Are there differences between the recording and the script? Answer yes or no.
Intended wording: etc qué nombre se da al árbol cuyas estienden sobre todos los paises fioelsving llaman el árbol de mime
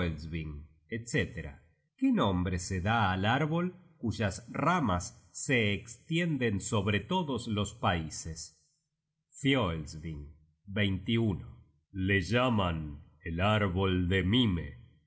yes